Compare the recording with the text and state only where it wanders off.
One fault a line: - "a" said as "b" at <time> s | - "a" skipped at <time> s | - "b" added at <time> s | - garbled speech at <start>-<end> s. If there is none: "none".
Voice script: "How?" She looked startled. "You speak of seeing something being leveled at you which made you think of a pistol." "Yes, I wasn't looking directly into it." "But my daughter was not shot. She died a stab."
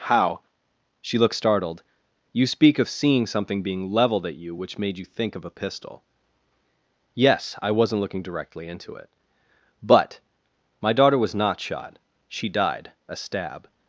none